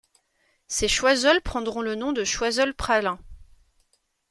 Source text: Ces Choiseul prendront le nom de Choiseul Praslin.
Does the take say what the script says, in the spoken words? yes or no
yes